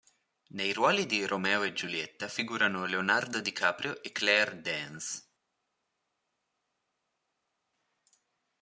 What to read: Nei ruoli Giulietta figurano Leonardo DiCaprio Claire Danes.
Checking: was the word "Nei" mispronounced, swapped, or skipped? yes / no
no